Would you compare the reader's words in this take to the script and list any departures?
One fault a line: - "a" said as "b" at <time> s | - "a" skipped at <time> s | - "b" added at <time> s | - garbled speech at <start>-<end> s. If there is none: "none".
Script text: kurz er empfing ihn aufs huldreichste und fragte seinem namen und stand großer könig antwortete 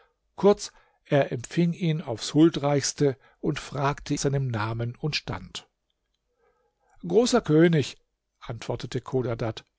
none